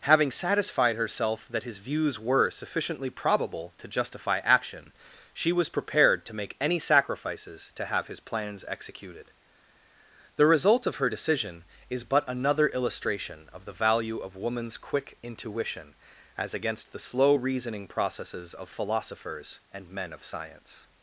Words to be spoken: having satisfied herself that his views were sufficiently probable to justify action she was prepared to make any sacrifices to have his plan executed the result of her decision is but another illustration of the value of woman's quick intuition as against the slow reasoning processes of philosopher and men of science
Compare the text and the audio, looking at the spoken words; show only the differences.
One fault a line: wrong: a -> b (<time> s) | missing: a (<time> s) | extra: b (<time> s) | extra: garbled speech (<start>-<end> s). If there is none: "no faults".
wrong: plan -> plans (8.2 s)
wrong: philosopher -> philosophers (18.7 s)